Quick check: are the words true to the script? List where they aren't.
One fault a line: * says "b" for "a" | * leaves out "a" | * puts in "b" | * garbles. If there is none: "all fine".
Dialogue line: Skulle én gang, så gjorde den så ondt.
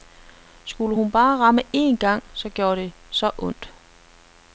* puts in "hun bare ramme"
* says "det" for "den"